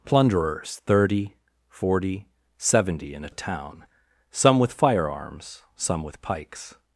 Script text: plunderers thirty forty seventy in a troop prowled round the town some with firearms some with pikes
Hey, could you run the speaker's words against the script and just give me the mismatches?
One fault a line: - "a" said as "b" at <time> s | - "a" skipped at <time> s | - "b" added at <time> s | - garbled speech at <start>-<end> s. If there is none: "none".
- "troop prowled round" skipped at 3.3 s